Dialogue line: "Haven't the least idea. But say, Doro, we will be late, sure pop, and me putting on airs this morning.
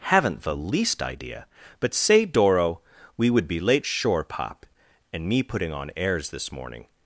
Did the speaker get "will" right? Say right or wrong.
wrong